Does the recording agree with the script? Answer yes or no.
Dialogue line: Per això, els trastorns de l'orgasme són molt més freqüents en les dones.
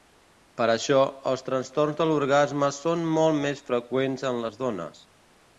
yes